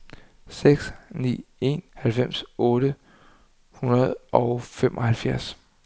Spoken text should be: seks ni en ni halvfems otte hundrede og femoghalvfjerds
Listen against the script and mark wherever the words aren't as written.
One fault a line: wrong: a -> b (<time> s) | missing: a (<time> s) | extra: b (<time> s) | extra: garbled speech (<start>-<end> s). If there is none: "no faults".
missing: ni (1.8 s)